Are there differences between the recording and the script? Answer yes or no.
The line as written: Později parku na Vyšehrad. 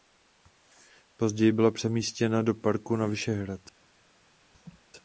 yes